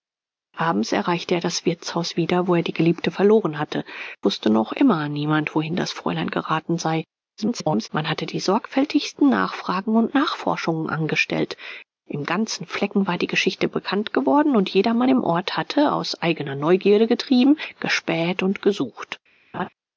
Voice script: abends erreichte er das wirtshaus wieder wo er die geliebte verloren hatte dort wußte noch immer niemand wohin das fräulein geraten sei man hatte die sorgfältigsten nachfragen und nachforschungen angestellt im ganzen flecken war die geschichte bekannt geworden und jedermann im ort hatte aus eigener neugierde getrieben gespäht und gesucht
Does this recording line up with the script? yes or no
no